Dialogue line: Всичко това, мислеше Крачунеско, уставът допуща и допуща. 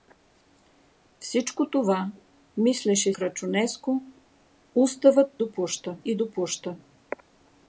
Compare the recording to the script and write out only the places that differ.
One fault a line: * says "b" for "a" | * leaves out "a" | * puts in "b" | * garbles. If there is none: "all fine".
all fine